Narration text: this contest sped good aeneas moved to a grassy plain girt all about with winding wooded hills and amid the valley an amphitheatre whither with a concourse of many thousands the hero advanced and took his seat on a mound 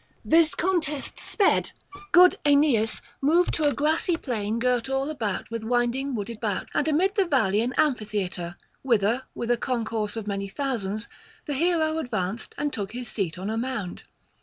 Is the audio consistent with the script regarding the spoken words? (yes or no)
no